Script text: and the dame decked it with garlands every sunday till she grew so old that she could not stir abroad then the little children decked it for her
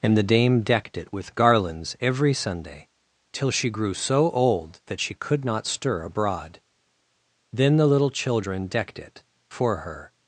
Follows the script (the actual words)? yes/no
yes